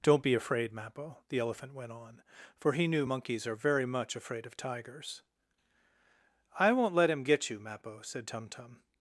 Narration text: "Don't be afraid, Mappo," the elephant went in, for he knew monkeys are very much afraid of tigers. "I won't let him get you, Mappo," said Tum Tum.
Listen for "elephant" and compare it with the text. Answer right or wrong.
right